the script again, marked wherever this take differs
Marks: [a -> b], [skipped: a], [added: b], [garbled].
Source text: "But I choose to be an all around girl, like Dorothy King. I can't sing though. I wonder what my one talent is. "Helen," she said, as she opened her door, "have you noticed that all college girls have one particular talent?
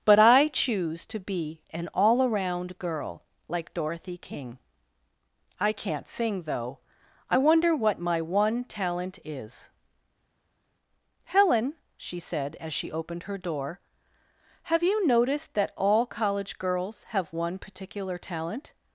"But I choose to be an all around girl, like Dorothy King. I can't sing though. I wonder what my one talent is. "Helen," she said, as she opened her door, "have you noticed that all college girls have one particular talent?